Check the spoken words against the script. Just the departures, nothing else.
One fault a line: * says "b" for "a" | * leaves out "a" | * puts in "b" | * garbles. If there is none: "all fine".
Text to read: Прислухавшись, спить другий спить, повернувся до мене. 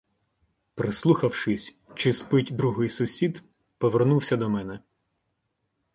* puts in "чи"
* says "сусід" for "спить"